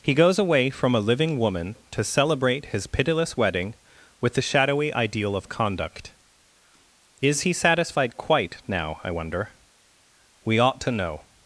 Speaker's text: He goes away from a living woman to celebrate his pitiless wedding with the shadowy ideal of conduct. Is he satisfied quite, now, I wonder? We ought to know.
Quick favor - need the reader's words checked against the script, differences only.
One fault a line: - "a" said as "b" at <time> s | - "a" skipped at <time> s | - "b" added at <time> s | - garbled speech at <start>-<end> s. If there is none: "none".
none